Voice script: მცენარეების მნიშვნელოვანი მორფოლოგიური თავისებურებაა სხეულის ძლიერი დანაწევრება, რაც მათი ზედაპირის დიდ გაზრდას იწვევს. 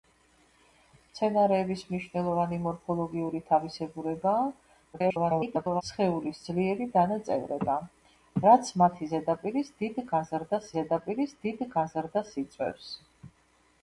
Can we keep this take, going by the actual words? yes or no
no